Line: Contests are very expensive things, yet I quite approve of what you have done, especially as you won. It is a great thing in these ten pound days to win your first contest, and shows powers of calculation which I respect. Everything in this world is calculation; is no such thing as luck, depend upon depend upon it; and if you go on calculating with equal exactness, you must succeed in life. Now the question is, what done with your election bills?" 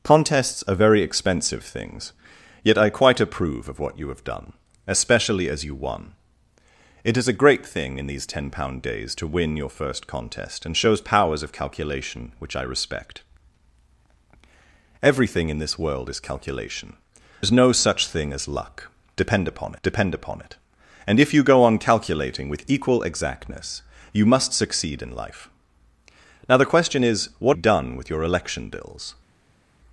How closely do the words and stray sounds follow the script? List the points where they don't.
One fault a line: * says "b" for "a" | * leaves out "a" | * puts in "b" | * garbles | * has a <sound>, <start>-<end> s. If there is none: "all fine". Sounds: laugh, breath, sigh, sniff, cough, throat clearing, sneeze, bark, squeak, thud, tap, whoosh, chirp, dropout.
all fine